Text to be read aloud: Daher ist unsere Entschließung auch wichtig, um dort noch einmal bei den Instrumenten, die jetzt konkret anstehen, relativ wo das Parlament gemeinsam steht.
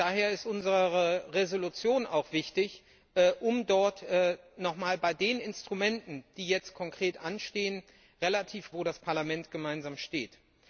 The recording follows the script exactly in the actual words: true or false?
true